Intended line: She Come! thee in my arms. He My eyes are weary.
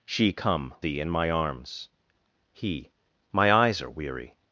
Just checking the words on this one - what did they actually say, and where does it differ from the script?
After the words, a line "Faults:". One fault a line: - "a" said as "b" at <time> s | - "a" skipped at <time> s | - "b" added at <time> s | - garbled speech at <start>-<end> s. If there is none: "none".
She Come! thee in my arms. He My eyes are weary.
Faults:
none